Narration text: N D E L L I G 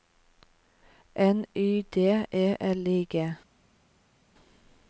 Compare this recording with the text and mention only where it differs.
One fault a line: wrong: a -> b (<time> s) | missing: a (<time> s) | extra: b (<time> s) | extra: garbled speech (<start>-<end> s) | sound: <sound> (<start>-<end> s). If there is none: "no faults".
extra: Y (1.5 s)
missing: L (2.9 s)